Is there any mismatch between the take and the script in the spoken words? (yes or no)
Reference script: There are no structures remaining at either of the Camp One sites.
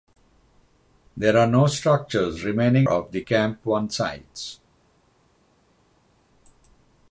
yes